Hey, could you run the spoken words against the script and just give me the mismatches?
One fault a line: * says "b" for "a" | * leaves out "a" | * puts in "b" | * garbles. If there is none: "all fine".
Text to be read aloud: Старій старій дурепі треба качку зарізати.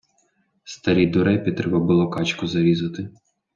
* leaves out "старій"
* puts in "було"